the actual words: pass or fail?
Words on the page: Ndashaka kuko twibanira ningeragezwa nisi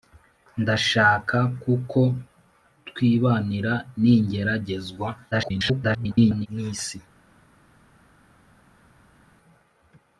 fail